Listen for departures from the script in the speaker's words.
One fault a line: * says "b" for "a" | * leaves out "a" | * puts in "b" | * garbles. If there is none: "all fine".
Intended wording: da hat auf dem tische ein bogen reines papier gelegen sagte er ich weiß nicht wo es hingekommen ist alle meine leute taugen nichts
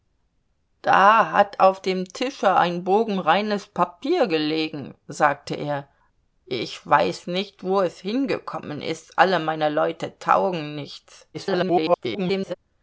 * garbles